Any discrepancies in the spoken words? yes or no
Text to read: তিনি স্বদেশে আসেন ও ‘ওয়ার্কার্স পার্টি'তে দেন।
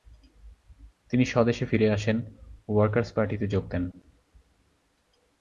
yes